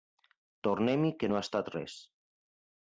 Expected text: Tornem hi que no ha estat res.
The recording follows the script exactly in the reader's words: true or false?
true